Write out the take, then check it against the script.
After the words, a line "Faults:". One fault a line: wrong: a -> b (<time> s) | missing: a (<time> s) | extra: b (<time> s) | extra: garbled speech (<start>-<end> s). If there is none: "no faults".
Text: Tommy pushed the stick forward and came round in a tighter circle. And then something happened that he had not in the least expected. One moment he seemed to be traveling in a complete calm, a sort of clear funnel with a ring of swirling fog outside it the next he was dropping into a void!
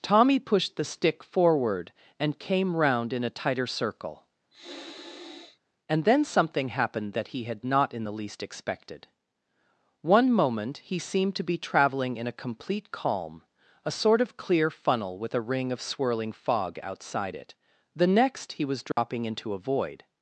Tommy pushed the stick forward and came round in a tighter circle. And then something happened that he had not in the least expected. One moment he seemed to be traveling in a complete calm, a sort of clear funnel with a ring of swirling fog outside it the next he was dropping into a void!
Faults:
no faults